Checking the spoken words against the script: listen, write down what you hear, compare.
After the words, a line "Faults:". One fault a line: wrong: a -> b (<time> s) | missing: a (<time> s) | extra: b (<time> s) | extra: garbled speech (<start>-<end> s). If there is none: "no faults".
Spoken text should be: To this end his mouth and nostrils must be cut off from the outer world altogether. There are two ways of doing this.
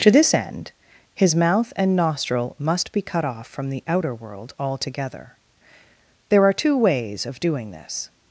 To this end his mouth and nostril must be cut off from the outer world altogether. There are two ways of doing this.
Faults:
wrong: nostrils -> nostril (1.9 s)